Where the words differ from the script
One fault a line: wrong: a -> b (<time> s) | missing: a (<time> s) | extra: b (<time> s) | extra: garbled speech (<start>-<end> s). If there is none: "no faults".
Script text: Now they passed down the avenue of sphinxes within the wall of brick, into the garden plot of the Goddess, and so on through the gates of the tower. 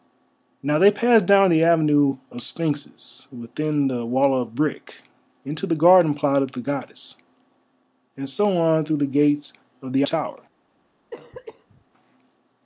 no faults